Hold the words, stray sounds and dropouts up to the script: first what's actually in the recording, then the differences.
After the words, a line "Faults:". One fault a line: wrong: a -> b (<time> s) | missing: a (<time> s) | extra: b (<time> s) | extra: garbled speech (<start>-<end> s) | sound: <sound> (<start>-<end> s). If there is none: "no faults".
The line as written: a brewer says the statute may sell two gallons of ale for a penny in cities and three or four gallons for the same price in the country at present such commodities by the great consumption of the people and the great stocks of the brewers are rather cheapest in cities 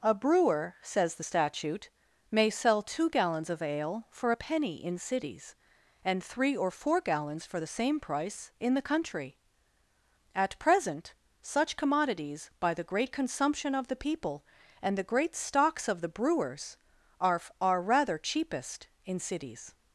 a brewer says the statute may sell two gallons of ale for a penny in cities and three or four gallons for the same price in the country at present such commodities by the great consumption of the people and the great stocks of the brewers are are rather cheapest in cities
Faults:
extra: are (17.6 s)